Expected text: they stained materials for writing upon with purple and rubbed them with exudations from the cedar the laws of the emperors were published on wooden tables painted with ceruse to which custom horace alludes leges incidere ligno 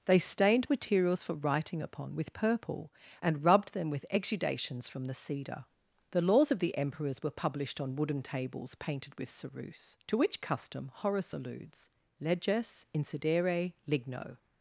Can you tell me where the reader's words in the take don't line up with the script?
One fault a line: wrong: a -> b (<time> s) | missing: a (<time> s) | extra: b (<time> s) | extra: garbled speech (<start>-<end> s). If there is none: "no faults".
no faults